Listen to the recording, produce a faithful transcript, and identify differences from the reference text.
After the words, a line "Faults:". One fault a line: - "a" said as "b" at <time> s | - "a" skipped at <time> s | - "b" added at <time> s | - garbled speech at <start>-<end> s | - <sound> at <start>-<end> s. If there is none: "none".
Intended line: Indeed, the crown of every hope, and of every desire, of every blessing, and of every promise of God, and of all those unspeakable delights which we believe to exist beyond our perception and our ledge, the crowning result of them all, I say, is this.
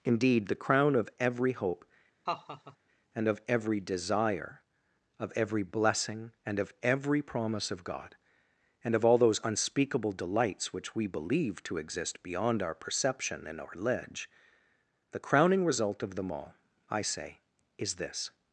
Indeed, the crown of every hope, and of every desire, of every blessing, and of every promise of God, and of all those unspeakable delights which we believe to exist beyond our perception and our ledge, the crowning result of them all, I say, is this.
Faults:
- laugh at 2.3-2.8 s